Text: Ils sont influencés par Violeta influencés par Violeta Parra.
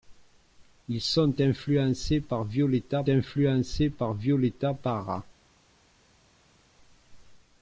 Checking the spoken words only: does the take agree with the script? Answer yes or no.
yes